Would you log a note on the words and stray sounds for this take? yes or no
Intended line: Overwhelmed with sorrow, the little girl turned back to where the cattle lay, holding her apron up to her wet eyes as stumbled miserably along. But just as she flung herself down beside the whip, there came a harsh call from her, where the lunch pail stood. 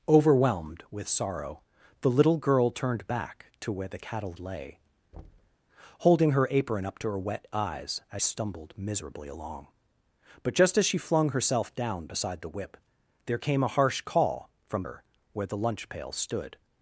yes